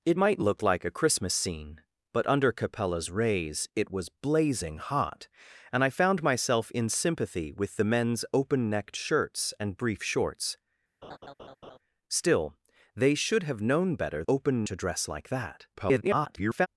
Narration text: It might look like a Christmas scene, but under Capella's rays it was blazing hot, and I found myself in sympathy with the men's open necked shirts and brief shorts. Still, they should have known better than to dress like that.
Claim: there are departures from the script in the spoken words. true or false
true